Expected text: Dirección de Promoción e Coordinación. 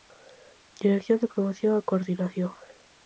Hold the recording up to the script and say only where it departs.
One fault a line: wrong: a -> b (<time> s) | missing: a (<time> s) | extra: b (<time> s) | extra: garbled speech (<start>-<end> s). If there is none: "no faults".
no faults